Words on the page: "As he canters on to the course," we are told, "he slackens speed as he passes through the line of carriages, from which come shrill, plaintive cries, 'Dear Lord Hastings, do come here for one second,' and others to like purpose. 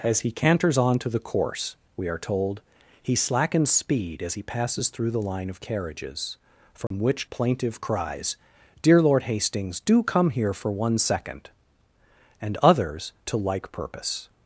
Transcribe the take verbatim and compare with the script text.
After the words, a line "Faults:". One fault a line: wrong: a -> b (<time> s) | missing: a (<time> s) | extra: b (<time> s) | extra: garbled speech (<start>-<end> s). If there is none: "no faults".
"As he canters on to the course," we are told, "he slackens speed as he passes through the line of carriages, from which plaintive cries, 'Dear Lord Hastings, do come here for one second,' and others to like purpose.
Faults:
missing: come shrill (7.3 s)